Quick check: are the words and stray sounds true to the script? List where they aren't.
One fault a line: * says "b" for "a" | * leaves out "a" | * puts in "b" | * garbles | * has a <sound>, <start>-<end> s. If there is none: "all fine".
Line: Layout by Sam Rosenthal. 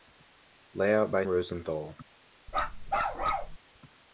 * leaves out "Sam"
* has a bark, 2.5-3.6 s